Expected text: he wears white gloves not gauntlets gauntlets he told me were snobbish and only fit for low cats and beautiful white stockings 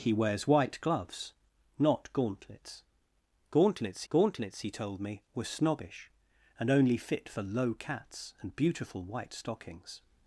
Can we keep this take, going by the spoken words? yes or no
no